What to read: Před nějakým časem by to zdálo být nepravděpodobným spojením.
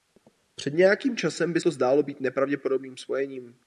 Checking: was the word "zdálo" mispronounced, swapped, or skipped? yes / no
no